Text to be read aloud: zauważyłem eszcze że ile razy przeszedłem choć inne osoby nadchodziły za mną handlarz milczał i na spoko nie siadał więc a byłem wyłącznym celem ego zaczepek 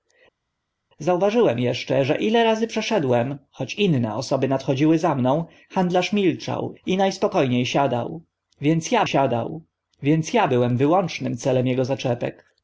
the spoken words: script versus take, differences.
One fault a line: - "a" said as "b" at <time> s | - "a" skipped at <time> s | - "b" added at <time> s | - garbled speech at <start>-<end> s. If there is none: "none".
- "siadał więc a" added at 9.0 s